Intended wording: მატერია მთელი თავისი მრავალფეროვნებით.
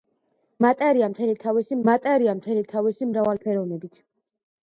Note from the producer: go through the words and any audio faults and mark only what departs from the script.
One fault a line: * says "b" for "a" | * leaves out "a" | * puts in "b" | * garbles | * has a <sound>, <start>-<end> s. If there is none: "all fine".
* puts in "მატერია მთელი თავისი"